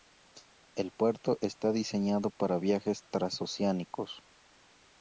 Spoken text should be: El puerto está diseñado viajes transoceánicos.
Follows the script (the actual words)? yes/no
no